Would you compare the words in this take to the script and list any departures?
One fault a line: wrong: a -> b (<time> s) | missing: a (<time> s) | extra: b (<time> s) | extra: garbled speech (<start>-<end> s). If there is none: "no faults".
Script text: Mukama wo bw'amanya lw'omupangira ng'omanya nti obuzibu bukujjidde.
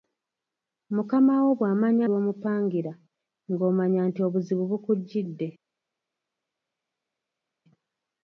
no faults